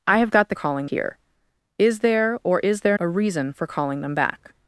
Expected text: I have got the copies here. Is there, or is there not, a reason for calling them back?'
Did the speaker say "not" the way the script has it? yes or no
no